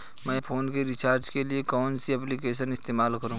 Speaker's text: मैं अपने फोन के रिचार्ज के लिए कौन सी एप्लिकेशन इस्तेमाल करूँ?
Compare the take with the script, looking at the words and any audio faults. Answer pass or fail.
fail